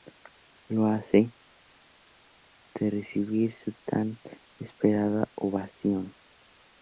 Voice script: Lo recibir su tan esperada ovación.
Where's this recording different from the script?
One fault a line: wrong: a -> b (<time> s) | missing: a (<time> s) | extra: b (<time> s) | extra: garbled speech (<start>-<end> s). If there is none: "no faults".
extra: hace de (0.8 s)